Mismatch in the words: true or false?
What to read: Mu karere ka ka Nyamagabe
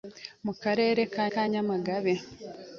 false